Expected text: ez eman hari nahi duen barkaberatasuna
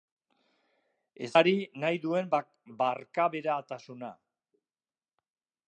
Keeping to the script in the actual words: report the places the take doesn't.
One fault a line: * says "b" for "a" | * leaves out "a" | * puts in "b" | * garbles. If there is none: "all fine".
* leaves out "eman"